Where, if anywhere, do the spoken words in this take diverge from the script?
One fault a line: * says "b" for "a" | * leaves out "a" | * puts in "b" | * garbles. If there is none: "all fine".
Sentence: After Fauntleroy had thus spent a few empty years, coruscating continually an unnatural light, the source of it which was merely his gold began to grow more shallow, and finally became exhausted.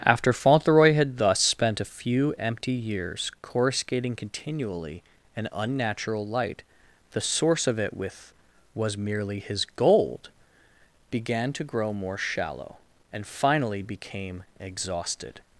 * says "with" for "which"